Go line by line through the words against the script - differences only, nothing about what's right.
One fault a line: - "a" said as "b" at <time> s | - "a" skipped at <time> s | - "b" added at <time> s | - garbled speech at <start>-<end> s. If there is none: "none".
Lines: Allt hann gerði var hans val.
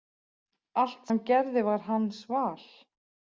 none